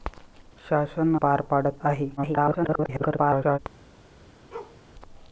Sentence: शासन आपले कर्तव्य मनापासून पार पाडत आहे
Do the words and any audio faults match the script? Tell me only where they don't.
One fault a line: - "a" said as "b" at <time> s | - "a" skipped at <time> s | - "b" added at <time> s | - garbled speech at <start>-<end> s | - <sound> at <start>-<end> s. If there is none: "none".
- "आपले कर्तव्य मनापासून" skipped at 1.1 s
- garbled speech at 2.2-3.6 s
- bark at 4.5-4.8 s